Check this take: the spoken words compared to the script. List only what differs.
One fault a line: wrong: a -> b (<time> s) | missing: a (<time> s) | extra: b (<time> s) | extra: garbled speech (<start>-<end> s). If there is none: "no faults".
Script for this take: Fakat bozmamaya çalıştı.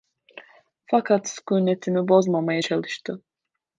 extra: sükûnetimi (1.3 s)